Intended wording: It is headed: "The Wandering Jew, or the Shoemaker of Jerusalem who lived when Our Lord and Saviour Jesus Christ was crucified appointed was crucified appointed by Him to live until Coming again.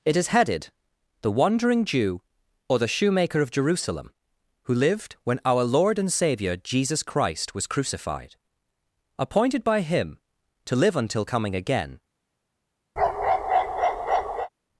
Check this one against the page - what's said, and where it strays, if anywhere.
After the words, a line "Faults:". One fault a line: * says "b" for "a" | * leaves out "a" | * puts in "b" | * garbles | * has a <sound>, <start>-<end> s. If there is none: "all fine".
It is headed: "The Wandering Jew, or the Shoemaker of Jerusalem who lived when Our Lord and Saviour Jesus Christ was crucified appointed by Him to live until Coming again.
Faults:
* leaves out "was crucified appointed"
* has a bark, 13.0-14.5 s